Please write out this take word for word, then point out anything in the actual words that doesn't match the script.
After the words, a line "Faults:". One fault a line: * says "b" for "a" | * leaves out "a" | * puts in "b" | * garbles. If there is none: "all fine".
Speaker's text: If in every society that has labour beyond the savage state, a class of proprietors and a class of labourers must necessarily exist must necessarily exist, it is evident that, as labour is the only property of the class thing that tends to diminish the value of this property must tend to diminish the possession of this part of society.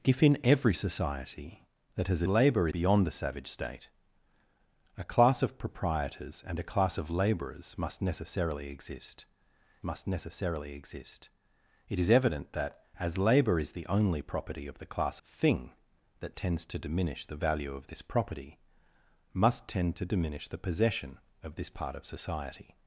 If in every society that has labour beyond the savage state, a class of proprietors and a class of labourers must necessarily exist must necessarily exist, it is evident that, as labour is the only property of the class thing that tends to diminish the value of this property must tend to diminish the possession of this part of society.
Faults:
all fine